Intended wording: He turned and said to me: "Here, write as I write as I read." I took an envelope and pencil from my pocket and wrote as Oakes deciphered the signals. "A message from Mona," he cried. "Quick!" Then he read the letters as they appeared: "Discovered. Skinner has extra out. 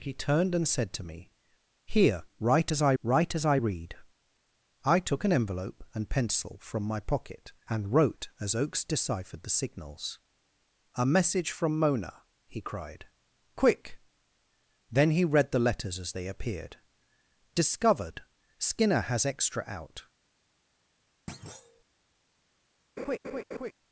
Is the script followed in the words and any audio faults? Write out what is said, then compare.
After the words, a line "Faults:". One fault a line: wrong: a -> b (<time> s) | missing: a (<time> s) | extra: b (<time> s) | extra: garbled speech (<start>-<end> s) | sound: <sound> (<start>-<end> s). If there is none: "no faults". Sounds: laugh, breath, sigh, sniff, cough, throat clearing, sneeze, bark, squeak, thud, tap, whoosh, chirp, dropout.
He turned and said to me: "Here, write as I write as I read." I took an envelope and pencil from my pocket and wrote as Oakes deciphered the signals. "A message from Mona," he cried. "Quick!" Then he read the letters as they appeared: "Discovered. Skinner has extra out.
Faults:
sound: thud (21.3-21.8 s)
sound: laugh (23.0-23.7 s)